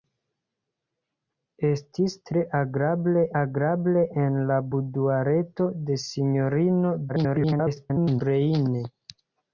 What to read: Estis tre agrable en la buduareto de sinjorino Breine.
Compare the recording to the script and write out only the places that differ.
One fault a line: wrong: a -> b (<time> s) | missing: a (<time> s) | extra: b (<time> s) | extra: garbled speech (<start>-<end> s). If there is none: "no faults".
extra: agrable (3.4 s)
extra: garbled speech (7.1-8.2 s)